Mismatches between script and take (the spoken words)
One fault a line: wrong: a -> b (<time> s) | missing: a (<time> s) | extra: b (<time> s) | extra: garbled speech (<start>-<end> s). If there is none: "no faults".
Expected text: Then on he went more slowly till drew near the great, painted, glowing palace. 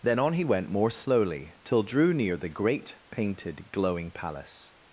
no faults